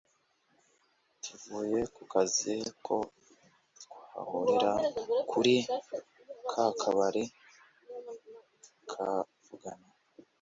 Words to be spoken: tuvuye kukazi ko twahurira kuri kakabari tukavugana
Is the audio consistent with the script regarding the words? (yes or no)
yes